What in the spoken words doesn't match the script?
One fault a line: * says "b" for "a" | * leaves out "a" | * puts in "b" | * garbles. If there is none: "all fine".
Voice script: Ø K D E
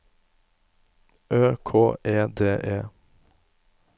* puts in "E"